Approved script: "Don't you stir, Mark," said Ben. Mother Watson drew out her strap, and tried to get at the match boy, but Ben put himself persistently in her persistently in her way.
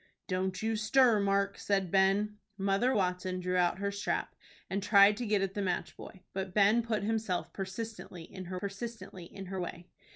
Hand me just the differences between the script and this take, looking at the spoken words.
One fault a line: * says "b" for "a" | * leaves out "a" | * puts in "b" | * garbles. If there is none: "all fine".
all fine